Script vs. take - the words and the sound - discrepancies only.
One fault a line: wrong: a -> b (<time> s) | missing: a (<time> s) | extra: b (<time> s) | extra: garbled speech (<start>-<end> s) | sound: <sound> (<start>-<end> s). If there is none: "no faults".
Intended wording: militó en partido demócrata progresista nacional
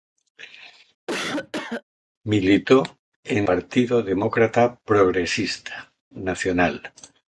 sound: cough (1.1-1.8 s)